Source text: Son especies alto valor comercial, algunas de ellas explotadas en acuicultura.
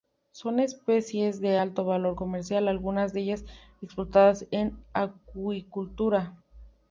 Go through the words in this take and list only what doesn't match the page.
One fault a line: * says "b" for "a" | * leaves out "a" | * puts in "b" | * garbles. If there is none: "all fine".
* puts in "de"